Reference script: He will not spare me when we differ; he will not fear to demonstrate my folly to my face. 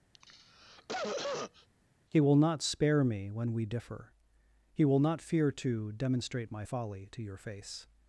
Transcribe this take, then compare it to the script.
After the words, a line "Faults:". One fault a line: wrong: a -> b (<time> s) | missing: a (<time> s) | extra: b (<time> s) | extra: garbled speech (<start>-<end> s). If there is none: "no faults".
He will not spare me when we differ; he will not fear to demonstrate my folly to your face.
Faults:
wrong: my -> your (7.2 s)